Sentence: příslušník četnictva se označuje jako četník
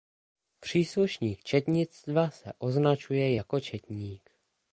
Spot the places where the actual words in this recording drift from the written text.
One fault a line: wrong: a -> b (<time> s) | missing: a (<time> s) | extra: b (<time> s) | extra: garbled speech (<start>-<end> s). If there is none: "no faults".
no faults